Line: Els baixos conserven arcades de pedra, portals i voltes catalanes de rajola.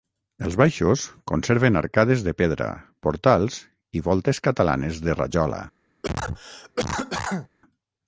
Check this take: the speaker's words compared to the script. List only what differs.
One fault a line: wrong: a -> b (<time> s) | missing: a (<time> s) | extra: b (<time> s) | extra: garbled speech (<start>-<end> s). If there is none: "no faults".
no faults